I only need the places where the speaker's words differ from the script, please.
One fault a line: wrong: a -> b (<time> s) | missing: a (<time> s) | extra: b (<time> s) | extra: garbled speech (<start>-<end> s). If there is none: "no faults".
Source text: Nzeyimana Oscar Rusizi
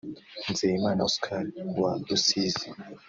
extra: wa (1.8 s)